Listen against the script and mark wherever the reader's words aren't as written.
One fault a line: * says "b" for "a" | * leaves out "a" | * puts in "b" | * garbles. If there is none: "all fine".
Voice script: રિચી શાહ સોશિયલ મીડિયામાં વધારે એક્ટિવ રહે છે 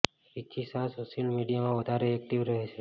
all fine